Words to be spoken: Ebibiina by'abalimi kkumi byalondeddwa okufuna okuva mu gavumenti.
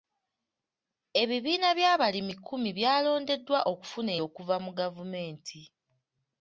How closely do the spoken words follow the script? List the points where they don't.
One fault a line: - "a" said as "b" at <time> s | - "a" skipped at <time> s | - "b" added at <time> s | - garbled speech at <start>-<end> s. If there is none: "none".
none